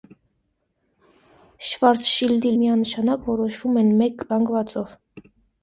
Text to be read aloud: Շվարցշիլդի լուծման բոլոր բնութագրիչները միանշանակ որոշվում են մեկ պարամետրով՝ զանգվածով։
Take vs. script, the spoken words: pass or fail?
fail